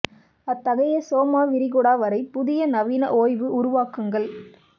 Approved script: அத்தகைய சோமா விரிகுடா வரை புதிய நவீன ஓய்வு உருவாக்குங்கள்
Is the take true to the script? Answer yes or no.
yes